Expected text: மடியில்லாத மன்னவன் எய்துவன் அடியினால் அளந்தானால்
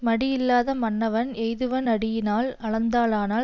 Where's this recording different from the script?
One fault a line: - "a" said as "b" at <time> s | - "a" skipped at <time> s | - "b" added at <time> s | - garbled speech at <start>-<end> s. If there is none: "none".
none